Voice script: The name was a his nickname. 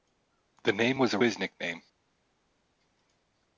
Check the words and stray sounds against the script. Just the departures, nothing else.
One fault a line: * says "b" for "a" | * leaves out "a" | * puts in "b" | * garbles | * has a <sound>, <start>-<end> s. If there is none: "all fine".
all fine